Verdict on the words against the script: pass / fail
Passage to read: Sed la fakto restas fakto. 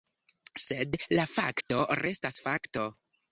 pass